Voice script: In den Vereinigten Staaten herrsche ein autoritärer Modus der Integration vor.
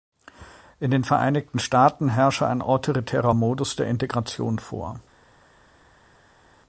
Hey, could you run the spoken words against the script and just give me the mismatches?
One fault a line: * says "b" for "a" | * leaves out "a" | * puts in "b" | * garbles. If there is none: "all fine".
all fine